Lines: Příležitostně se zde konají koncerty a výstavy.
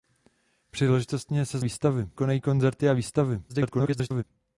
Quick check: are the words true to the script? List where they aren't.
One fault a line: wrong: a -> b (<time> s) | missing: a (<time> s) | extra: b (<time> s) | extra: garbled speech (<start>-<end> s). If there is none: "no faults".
wrong: zde -> výstavy (1.6 s)
extra: garbled speech (3.5-4.2 s)